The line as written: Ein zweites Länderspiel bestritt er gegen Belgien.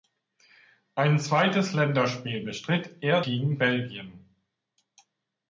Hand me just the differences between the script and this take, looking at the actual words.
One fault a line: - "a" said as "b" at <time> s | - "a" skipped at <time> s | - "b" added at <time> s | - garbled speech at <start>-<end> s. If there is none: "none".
none